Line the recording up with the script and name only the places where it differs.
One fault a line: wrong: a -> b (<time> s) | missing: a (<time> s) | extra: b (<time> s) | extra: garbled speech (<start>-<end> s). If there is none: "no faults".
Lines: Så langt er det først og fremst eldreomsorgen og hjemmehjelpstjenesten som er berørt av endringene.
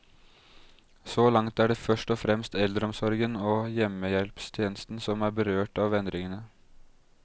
no faults